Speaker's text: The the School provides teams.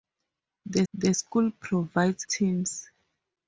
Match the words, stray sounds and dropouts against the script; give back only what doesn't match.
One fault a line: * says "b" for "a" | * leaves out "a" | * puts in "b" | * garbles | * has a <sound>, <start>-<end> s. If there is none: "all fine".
all fine